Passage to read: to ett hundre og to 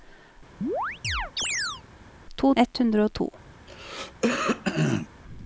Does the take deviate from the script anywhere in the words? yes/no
no